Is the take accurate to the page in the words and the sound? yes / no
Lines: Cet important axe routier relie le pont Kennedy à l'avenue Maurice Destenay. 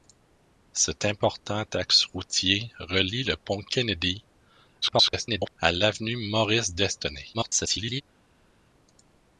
no